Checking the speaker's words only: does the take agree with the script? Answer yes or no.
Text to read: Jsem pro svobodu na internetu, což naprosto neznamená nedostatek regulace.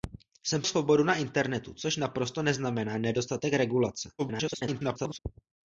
no